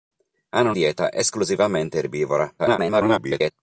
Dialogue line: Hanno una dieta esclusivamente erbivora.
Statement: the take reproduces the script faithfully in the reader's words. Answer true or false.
false